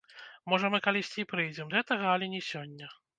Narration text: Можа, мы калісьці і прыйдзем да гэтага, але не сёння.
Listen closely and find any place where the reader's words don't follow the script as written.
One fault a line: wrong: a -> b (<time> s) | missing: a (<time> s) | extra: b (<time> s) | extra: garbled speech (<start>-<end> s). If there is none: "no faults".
missing: да (1.7 s)